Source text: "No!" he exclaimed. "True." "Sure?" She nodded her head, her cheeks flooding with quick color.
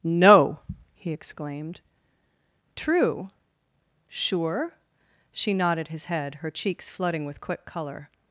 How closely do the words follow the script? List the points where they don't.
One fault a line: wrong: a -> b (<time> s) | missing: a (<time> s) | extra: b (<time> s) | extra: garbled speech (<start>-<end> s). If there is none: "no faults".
wrong: her -> his (5.9 s)